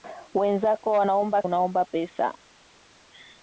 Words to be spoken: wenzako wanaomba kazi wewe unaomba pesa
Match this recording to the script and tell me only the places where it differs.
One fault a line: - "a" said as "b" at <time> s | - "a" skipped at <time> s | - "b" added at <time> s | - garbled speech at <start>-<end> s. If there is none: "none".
- "kazi wewe" skipped at 1.4 s